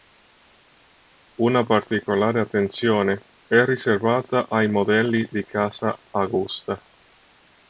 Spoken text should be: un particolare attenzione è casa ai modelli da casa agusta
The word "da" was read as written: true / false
false